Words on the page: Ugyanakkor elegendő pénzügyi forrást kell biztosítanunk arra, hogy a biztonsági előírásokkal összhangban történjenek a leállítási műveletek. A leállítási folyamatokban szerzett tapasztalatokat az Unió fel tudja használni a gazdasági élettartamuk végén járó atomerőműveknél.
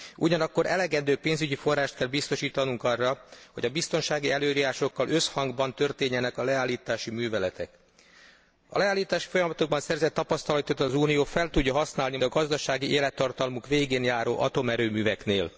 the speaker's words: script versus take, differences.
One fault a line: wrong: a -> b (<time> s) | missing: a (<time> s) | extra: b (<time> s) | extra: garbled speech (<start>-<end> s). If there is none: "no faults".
no faults